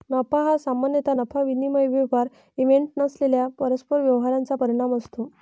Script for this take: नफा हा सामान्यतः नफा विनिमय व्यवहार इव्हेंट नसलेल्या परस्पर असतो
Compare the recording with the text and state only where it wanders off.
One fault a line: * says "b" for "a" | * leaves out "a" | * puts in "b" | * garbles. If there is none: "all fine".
* puts in "व्यवहारांचा परिणाम"